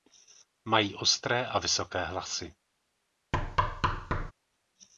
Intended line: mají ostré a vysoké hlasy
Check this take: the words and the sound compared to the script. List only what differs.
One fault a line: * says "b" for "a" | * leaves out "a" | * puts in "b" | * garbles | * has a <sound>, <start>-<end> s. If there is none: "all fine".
* has a thud, 3.3-4.3 s